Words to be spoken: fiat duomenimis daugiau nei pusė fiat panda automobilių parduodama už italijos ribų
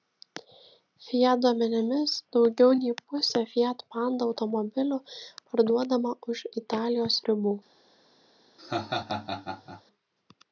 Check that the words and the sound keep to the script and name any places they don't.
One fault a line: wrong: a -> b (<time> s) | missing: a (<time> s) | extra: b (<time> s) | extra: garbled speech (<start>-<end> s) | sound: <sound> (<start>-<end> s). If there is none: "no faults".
sound: laugh (8.6-9.8 s)